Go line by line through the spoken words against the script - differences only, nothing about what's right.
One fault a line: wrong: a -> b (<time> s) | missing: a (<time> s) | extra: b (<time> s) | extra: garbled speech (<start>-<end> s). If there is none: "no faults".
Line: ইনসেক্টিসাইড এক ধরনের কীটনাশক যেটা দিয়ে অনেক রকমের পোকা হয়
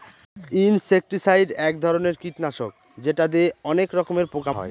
no faults